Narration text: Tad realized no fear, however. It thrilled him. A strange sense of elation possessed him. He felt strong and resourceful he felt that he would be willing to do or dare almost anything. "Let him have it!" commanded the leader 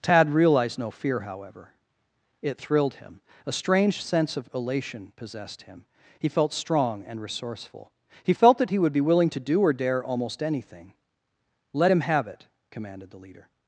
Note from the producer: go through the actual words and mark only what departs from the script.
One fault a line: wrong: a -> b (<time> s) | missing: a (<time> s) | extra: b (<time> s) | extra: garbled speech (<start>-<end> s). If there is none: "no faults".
no faults